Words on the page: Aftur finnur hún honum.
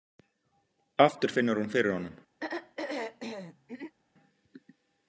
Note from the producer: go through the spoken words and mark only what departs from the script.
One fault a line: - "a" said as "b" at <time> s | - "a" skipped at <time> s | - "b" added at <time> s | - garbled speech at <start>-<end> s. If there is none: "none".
- "fyrir" added at 1.8 s